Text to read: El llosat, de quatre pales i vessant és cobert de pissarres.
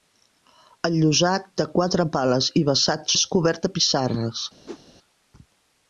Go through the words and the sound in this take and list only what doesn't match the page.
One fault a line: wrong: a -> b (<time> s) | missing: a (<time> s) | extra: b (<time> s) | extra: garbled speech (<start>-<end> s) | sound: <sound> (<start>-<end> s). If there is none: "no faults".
sound: whoosh (4.7-4.8 s)